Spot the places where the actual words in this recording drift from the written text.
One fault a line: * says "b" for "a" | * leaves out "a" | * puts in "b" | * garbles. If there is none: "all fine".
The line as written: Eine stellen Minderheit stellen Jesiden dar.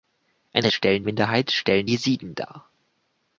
all fine